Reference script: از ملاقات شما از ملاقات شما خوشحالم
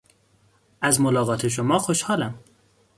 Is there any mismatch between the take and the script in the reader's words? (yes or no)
yes